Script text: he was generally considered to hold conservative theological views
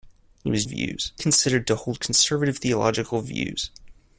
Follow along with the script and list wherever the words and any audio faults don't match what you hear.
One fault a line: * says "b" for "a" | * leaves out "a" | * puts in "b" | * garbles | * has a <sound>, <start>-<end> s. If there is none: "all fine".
* says "views" for "generally"